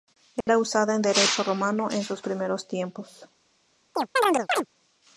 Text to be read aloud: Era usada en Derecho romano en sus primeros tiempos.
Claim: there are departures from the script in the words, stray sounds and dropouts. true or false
true